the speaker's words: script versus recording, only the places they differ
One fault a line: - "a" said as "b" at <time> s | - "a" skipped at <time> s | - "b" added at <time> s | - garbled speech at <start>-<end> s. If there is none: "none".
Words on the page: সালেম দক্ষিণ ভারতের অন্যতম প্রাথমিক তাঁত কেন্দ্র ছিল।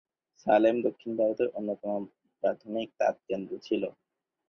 none